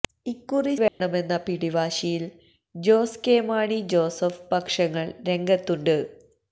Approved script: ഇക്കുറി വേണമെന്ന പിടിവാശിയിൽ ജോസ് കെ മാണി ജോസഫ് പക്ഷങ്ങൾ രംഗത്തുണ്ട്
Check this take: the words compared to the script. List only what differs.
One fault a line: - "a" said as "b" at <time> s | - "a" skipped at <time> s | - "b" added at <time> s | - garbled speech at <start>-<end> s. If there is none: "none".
none